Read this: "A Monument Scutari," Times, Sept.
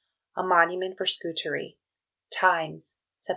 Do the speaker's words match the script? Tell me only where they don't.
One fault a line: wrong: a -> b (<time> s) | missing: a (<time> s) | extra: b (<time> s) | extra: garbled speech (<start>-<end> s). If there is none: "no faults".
extra: for (1.0 s)